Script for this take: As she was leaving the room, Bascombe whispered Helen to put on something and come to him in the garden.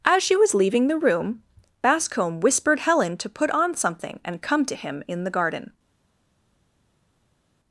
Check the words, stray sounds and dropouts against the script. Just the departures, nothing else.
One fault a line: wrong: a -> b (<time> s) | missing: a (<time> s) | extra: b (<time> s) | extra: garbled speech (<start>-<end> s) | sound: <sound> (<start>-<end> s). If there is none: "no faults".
no faults